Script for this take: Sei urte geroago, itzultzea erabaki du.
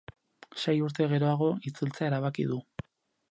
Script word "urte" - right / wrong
right